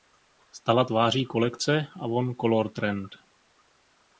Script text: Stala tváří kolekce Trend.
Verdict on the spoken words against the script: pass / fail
fail